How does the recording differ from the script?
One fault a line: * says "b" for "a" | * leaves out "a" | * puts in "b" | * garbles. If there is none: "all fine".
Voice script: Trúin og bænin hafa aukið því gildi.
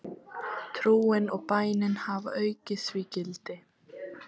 all fine